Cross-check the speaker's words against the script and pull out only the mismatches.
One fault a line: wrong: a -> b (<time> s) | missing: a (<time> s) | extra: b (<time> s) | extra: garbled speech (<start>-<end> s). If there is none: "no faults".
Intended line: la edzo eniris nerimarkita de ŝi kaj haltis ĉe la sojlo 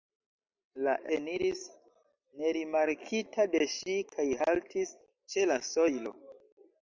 missing: edzo (0.9 s)